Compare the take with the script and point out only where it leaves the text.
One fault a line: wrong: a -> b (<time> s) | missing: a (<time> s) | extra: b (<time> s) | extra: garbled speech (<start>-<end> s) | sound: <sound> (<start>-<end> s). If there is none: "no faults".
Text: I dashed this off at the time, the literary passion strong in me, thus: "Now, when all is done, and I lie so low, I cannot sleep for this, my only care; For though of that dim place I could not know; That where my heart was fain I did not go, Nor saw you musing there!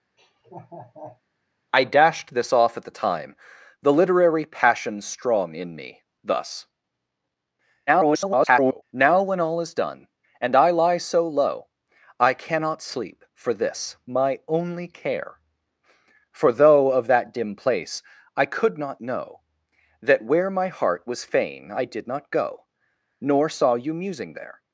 sound: laugh (0.2-1.2 s)
extra: garbled speech (7.9-8.8 s)